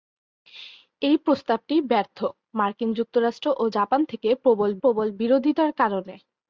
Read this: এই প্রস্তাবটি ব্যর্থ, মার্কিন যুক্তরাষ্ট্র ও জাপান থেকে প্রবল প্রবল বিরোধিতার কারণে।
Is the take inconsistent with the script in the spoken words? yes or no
no